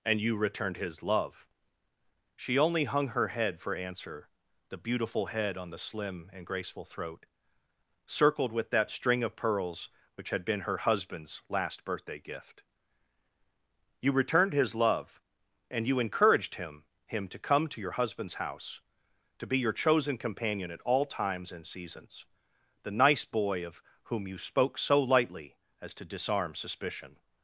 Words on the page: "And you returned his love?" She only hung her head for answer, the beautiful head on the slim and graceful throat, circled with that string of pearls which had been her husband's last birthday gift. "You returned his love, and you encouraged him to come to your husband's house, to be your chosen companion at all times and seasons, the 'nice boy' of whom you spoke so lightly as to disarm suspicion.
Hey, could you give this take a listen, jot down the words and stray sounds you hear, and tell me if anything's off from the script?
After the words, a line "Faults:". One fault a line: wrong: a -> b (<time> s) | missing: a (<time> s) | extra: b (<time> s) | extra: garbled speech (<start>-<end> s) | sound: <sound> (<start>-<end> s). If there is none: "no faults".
"And you returned his love?" She only hung her head for answer, the beautiful head on the slim and graceful throat, circled with that string of pearls which had been her husband's last birthday gift. "You returned his love, and you encouraged him him to come to your husband's house, to be your chosen companion at all times and seasons, the 'nice boy' of whom you spoke so lightly as to disarm suspicion.
Faults:
extra: him (17.1 s)